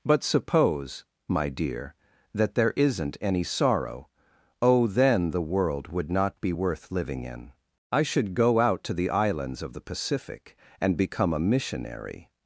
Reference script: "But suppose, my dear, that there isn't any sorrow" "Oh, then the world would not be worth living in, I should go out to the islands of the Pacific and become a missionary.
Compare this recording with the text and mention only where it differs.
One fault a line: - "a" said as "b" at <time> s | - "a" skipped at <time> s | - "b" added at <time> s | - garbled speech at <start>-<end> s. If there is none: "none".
none